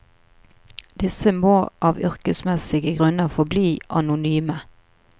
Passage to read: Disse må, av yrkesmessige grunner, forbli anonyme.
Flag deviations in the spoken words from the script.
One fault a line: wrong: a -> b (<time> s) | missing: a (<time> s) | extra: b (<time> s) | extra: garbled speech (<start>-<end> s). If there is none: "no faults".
no faults